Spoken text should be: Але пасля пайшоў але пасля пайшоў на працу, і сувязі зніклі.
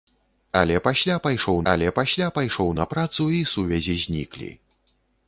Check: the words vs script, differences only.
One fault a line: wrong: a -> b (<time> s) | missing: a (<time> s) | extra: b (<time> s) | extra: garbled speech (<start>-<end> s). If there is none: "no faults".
no faults